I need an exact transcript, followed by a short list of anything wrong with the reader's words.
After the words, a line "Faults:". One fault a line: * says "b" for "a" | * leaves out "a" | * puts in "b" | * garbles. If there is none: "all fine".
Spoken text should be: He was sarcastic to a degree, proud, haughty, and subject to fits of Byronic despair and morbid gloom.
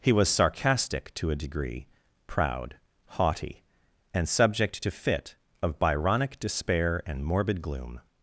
He was sarcastic to a degree, proud, haughty, and subject to fit of Byronic despair and morbid gloom.
Faults:
* says "fit" for "fits"